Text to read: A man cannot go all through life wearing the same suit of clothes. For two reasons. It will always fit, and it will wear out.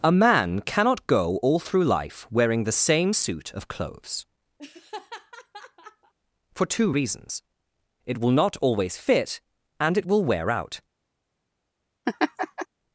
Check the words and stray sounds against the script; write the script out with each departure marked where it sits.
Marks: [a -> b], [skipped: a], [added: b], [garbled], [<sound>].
A man cannot go all through life wearing the same suit of clothes. [laugh] For two reasons. It will [added: not] always fit, and it will wear out. [laugh]